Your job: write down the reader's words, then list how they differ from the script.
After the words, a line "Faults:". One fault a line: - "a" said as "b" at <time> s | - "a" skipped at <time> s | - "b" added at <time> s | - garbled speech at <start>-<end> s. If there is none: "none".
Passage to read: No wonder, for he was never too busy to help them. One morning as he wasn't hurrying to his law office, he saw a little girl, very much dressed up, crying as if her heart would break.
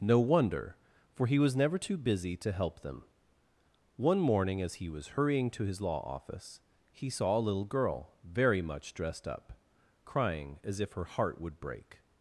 No wonder, for he was never too busy to help them. One morning as he was hurrying to his law office, he saw a little girl, very much dressed up, crying as if her heart would break.
Faults:
- "wasn't" said as "was" at 4.9 s